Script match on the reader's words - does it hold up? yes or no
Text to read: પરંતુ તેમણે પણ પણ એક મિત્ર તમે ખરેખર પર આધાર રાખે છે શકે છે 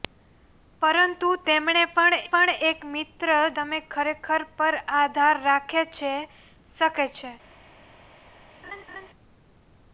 yes